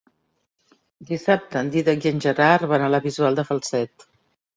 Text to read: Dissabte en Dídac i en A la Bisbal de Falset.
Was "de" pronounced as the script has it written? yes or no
yes